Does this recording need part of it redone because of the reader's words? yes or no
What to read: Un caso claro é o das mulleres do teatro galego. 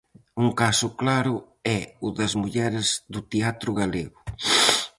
no